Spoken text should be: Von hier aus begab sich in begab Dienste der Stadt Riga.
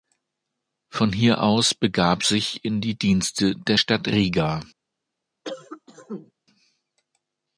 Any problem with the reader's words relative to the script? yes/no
yes